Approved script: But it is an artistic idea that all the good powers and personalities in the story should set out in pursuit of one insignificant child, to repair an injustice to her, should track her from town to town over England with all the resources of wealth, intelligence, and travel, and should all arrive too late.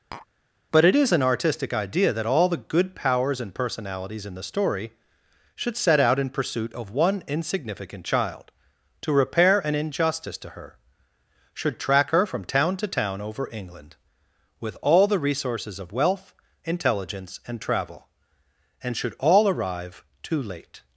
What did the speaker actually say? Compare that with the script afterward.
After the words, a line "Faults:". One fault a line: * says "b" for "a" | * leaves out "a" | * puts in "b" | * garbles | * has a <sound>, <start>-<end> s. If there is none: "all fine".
But it is an artistic idea that all the good powers and personalities in the story should set out in pursuit of one insignificant child, to repair an injustice to her, should track her from town to town over England with all the resources of wealth, intelligence, and travel, and should all arrive too late.
Faults:
* has a tap, 0.1-0.3 s